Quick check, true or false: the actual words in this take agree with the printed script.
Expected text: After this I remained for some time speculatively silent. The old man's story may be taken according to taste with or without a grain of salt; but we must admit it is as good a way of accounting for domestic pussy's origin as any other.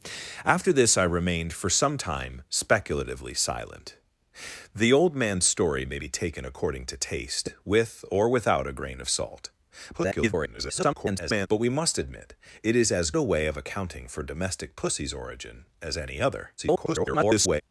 false